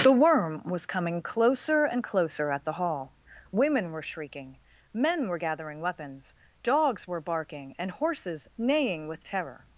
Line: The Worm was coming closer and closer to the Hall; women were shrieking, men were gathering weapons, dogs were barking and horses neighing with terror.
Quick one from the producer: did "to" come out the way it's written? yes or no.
no